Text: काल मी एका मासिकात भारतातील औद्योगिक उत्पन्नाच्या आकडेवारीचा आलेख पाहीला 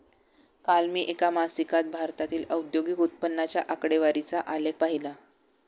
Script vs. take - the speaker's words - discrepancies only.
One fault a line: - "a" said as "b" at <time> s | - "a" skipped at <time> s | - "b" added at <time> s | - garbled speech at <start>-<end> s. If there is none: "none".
none